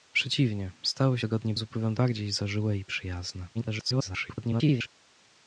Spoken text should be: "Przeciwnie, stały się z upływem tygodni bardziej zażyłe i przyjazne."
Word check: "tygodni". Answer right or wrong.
wrong